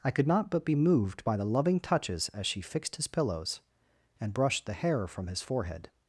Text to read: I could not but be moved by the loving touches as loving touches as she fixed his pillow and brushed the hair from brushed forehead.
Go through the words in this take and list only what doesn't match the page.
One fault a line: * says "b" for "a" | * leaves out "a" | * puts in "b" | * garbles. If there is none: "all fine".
* leaves out "loving touches as"
* says "pillows" for "pillow"
* says "his" for "brushed"